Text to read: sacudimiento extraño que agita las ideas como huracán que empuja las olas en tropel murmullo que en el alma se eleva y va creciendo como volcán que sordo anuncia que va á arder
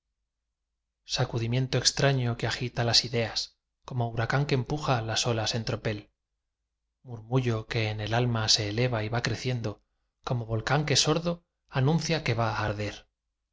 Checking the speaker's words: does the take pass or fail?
pass